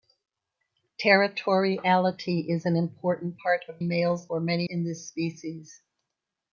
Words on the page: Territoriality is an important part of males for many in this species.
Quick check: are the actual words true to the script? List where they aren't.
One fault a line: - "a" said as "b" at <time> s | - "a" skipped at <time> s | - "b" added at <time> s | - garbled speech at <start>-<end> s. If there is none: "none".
none